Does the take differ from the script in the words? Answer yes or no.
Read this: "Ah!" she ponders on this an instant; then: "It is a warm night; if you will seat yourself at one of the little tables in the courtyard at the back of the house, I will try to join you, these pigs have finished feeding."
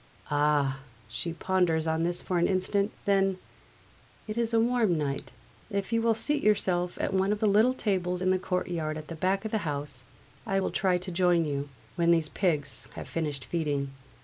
yes